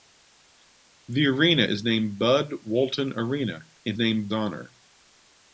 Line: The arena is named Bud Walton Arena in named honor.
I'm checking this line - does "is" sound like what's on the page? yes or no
yes